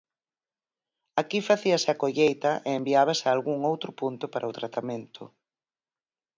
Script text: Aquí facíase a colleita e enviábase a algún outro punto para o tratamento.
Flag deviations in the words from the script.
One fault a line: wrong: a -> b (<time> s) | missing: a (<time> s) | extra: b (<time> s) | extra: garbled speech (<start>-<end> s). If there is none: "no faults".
no faults